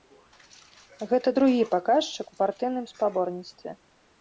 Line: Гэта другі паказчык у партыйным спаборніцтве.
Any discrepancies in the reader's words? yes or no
no